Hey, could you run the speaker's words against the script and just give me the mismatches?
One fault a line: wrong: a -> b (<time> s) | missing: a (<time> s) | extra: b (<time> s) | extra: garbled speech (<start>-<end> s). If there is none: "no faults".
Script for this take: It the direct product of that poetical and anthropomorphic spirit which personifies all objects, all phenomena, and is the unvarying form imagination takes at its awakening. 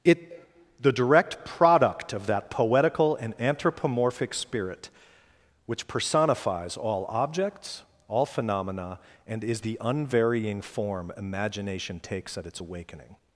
no faults